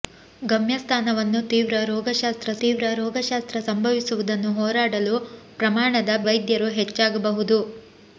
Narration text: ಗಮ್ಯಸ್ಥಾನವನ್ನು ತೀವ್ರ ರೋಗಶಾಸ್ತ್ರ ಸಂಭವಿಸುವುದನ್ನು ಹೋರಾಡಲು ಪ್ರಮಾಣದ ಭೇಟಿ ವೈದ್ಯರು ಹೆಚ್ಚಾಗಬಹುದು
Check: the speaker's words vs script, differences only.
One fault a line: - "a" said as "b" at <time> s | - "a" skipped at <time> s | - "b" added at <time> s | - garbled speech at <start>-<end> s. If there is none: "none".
- "ತೀವ್ರ ರೋಗಶಾಸ್ತ್ರ" added at 2.6 s
- "ಭೇಟಿ" skipped at 6.2 s